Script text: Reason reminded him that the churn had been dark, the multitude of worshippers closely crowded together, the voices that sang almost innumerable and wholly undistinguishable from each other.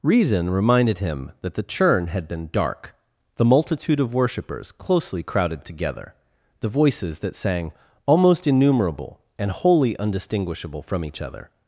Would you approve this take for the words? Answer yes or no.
yes